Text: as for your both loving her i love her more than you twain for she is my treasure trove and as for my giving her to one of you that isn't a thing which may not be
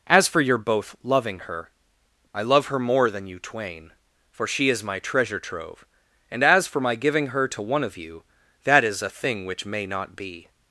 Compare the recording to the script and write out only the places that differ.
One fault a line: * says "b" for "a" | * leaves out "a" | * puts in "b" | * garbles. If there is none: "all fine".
* says "is" for "isn't"